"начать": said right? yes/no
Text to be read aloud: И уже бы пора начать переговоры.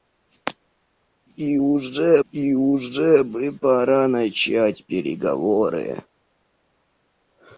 yes